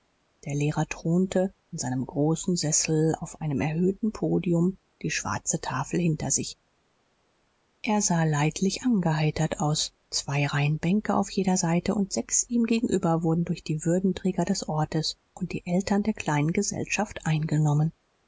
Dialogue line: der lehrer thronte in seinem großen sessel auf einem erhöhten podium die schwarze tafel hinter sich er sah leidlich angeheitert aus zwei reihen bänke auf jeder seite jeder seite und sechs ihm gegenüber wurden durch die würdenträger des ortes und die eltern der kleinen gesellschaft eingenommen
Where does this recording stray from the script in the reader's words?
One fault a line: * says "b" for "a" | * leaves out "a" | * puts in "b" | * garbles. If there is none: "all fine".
* leaves out "jeder seite"